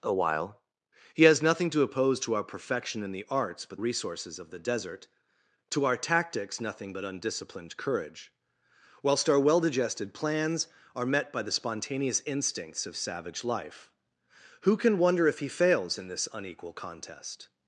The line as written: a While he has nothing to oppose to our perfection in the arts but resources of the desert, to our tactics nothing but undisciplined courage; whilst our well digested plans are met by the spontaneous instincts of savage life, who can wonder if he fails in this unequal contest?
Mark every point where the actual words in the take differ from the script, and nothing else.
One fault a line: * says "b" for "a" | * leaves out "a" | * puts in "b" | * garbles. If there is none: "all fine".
all fine